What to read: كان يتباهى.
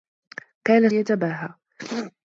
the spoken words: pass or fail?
pass